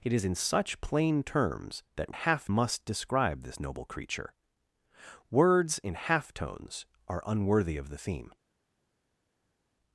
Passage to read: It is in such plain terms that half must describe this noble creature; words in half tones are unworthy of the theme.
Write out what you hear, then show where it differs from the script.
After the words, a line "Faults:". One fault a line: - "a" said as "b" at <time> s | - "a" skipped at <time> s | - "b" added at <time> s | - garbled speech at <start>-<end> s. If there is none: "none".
It is in such plain terms that half must describe this noble creature; words in half tones are unworthy of the theme.
Faults:
none